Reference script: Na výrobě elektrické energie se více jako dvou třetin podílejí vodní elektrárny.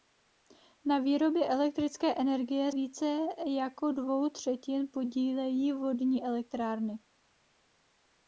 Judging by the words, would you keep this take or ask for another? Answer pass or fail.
fail